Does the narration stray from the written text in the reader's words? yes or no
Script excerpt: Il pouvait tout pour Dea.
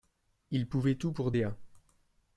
no